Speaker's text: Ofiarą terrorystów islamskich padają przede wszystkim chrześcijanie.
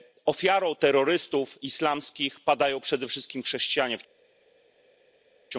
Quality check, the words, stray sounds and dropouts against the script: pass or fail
pass